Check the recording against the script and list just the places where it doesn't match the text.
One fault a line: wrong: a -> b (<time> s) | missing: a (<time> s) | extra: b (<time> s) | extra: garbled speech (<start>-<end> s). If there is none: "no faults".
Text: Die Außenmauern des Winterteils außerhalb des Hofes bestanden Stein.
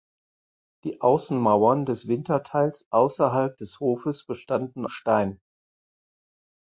no faults